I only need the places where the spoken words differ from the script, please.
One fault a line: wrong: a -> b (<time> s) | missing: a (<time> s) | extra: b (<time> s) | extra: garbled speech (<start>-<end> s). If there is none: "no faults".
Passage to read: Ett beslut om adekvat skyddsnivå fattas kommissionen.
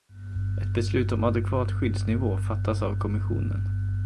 extra: av (2.8 s)